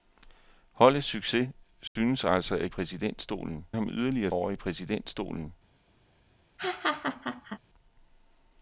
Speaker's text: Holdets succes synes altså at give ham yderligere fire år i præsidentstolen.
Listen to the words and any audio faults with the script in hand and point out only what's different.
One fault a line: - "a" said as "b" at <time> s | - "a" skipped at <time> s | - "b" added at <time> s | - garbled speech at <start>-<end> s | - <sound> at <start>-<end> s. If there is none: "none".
- dropout at 1.9-2.0 s
- "give" said as "præsidentstolen" at 2.7 s
- "fire" skipped at 4.3 s
- laugh at 6.6-7.6 s